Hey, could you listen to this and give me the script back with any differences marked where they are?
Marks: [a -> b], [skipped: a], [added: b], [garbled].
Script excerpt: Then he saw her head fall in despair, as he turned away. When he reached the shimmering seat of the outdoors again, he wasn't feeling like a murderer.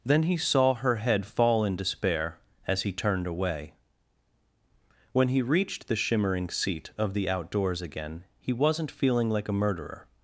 Then he saw her head fall in despair, as he turned away. When he reached the shimmering seat of the outdoors again, he wasn't feeling like a murderer.